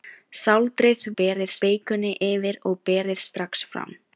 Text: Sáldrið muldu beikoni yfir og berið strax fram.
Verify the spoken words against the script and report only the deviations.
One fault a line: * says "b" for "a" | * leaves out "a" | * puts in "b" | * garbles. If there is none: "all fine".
* says "berið" for "muldu"